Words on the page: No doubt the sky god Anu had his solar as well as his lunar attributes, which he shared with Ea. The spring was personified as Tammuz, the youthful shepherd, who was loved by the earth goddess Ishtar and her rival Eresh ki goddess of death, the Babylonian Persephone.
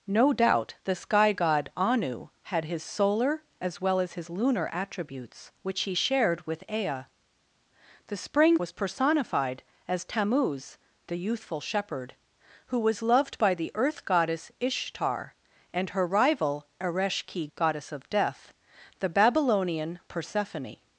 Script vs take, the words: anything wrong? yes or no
no